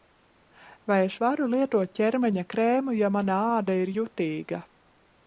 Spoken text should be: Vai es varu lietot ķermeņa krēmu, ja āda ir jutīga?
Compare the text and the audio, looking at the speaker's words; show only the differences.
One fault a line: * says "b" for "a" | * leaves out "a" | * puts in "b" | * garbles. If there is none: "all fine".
* puts in "mana"